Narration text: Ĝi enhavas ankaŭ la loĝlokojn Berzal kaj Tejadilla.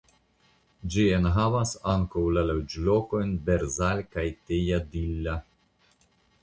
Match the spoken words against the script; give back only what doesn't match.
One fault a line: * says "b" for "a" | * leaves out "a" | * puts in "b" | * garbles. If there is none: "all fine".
all fine